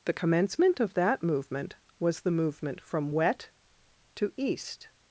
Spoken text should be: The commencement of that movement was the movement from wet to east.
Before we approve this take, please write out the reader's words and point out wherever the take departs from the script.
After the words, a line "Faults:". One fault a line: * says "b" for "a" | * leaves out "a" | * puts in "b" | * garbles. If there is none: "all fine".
The commencement of that movement was the movement from wet to east.
Faults:
all fine